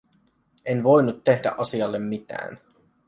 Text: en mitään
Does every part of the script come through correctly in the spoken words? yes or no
no